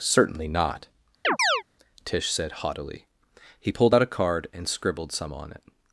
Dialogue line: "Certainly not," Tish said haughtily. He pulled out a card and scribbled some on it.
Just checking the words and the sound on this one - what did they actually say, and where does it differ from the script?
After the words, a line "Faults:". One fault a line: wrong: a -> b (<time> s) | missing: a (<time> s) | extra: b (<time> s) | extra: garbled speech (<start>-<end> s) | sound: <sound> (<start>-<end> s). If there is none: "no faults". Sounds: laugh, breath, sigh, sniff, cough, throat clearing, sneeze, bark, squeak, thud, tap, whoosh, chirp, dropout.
"Certainly not," Tish said haughtily. He pulled out a card and scribbled some on it.
Faults:
sound: chirp (1.2-1.6 s)